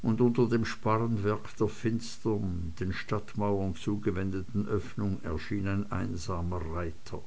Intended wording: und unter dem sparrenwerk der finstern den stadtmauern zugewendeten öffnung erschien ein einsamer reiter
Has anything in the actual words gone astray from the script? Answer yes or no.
no